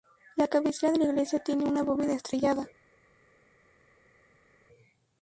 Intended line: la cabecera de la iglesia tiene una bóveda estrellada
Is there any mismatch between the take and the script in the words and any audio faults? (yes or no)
no